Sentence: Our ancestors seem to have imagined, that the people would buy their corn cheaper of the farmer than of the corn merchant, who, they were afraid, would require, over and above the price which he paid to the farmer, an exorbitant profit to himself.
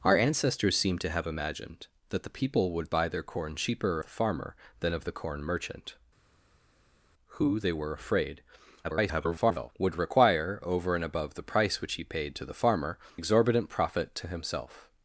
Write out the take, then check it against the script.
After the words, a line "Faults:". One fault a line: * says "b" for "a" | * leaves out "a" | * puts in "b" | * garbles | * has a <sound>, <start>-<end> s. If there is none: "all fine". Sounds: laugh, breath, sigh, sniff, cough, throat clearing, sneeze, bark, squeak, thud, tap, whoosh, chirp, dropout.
Our ancestors seem to have imagined, that the people would buy their corn cheaper the farmer than of the corn merchant, who, they were afraid, [garbled] would require, over and above the price which he paid to the farmer, exorbitant profit to himself.
Faults:
* leaves out "of"
* garbles
* leaves out "an"